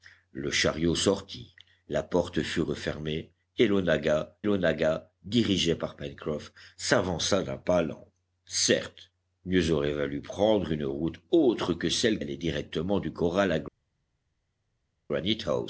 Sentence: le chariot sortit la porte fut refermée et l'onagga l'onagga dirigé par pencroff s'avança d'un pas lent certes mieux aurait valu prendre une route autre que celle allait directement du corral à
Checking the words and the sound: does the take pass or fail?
pass